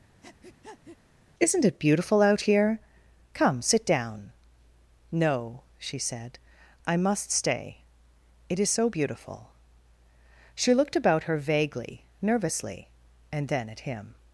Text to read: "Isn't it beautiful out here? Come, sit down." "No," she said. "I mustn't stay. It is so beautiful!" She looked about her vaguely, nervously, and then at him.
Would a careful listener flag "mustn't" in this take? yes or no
yes